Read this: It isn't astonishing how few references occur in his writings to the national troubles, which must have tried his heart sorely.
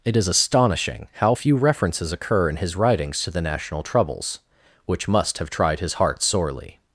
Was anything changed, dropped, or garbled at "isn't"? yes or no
yes